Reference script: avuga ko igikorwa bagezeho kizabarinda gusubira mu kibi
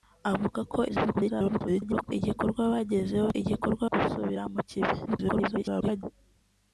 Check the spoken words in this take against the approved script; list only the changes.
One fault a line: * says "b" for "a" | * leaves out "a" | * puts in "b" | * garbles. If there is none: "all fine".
* garbles
* says "igikorwa" for "kizabarinda"
* garbles